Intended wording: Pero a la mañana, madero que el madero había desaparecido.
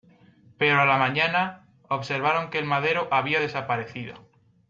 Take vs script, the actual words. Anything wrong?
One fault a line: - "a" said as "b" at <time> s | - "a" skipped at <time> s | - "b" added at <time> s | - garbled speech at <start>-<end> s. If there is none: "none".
- "madero" said as "observaron" at 1.9 s